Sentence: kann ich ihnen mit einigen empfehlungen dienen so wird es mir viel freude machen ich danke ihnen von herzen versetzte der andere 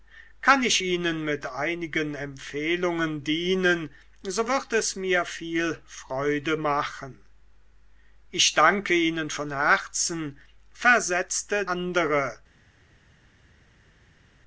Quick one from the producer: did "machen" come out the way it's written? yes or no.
yes